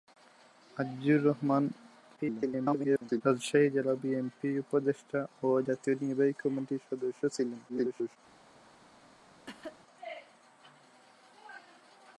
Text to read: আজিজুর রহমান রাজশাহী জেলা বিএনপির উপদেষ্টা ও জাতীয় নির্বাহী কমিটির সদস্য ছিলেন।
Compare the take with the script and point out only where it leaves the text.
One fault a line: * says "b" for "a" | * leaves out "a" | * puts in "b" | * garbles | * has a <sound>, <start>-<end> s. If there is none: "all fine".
* garbles
* garbles
* has a cough, 9.5-9.8 s